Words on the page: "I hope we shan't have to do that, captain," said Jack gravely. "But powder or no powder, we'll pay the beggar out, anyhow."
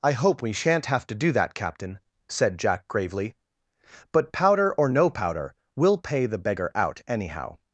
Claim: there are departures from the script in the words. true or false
false